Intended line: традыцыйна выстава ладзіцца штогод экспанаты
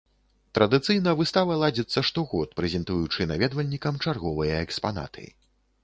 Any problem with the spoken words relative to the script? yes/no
yes